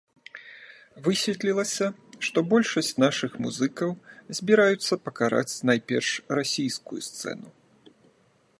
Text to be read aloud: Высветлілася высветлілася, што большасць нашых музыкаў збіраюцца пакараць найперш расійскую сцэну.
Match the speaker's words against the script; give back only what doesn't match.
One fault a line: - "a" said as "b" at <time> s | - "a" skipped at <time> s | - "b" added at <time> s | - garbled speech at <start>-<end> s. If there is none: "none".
- "высветлілася" skipped at 1.9 s